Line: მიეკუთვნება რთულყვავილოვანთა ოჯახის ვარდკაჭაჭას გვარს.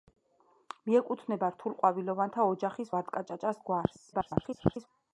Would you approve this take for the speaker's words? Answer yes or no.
no